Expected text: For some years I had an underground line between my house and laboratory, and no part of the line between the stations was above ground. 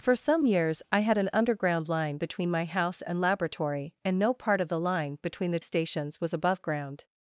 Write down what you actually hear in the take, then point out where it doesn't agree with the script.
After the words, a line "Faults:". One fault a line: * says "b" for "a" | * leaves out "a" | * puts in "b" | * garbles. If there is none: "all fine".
For some years I had an underground line between my house and laboratory, and no part of the line between the stations was above ground.
Faults:
all fine